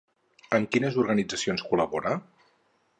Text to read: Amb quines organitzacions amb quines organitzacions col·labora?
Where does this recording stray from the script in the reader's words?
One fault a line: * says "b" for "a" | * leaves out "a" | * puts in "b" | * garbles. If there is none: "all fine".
* leaves out "amb quines organitzacions"